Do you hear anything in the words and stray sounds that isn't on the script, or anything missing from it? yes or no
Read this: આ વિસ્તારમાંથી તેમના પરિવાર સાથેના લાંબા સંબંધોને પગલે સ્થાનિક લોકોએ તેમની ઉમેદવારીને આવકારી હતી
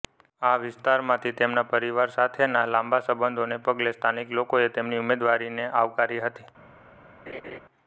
yes